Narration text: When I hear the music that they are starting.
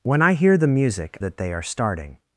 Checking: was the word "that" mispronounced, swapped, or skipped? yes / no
no